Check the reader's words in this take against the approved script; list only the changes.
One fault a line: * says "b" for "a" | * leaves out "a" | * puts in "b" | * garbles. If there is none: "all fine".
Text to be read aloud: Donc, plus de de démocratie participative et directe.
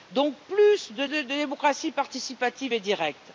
all fine